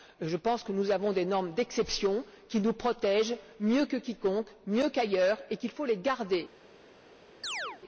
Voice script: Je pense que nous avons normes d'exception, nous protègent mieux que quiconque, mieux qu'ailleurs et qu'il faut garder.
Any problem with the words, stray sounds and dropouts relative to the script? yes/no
yes